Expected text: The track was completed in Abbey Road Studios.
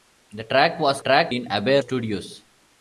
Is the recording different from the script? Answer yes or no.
yes